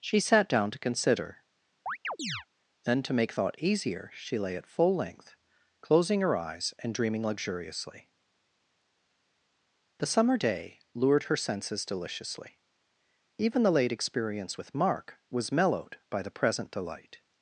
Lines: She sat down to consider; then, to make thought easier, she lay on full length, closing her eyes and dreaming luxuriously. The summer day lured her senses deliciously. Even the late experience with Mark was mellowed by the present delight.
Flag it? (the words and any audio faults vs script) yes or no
yes